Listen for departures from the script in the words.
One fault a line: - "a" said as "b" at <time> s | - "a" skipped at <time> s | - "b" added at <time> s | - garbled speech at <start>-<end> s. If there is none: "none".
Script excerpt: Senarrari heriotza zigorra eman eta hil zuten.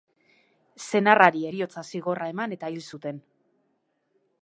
none